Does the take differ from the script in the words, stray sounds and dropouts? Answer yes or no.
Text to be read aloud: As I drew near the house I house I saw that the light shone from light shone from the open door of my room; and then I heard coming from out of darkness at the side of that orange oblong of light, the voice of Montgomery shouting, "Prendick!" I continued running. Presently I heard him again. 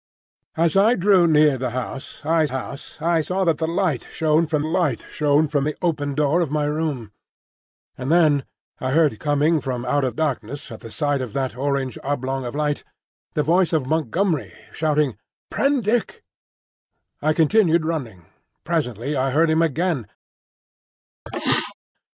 yes